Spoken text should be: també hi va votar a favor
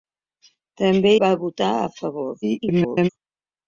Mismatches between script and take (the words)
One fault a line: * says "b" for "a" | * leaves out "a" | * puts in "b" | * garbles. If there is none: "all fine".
* leaves out "hi"
* garbles